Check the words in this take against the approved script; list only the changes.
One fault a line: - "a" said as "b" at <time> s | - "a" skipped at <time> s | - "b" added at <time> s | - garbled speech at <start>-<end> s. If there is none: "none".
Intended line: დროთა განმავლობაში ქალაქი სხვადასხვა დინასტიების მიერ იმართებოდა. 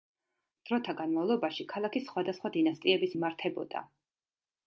- "მიერ" skipped at 3.1 s